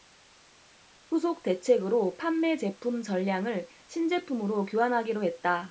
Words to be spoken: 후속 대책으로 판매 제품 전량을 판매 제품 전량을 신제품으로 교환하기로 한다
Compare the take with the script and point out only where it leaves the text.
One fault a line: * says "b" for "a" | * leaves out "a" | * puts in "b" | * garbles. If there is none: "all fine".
* leaves out "판매 제품 전량을"
* says "했다" for "한다"